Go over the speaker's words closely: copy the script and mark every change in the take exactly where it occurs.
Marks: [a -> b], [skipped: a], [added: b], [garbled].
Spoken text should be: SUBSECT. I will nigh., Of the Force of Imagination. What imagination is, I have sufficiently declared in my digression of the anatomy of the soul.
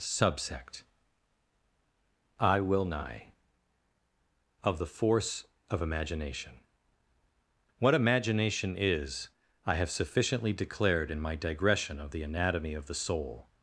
SUBSECT. I will nigh., Of the Force of Imagination. What imagination is, I have sufficiently declared in my digression of the anatomy of the soul.